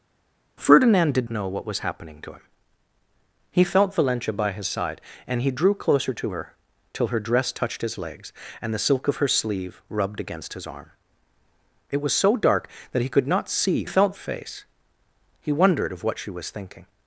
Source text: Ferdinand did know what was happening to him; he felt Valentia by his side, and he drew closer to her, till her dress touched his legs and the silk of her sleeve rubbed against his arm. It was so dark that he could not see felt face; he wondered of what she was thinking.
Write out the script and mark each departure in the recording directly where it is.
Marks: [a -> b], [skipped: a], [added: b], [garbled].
Ferdinand did know what was happening to him; he felt Valentia by his side, and he drew closer to her, till her dress touched his legs and the silk of her sleeve rubbed against his arm. It was so dark that he could not see felt face; he wondered of what she was thinking.